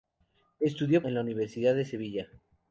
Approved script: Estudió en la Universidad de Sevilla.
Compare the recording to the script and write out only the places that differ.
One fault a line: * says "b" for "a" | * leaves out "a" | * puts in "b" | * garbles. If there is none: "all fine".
all fine